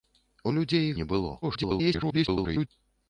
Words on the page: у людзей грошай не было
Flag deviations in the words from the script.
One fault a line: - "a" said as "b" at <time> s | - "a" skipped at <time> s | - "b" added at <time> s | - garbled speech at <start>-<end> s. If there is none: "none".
- "грошай" skipped at 0.9 s
- garbled speech at 1.4-2.7 s